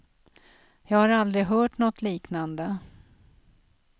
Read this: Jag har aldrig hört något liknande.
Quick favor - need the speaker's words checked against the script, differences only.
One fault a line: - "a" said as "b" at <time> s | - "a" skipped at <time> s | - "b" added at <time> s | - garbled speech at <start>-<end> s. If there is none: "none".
none